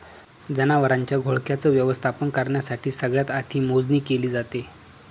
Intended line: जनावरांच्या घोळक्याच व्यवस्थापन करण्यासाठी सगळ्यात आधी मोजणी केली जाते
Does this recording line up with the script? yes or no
yes